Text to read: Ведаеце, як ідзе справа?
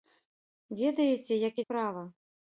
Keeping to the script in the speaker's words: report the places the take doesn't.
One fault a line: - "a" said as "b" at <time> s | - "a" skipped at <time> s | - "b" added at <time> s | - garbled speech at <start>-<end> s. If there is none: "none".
- "ідзе" skipped at 1.6 s